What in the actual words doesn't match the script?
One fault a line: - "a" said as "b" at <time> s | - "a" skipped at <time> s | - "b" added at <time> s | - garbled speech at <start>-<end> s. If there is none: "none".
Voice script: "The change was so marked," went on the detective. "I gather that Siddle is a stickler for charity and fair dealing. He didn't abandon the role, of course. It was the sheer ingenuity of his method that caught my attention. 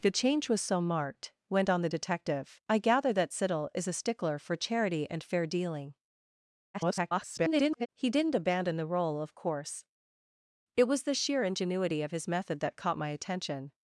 - garbled speech at 6.7-7.9 s